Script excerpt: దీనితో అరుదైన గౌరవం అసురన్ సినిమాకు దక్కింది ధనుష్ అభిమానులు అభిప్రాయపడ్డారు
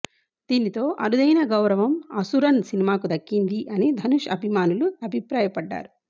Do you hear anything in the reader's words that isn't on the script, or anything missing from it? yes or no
yes